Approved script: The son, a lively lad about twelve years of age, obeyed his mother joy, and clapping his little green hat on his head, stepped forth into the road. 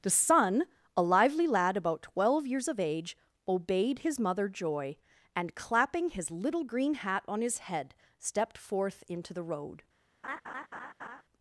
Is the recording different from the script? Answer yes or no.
no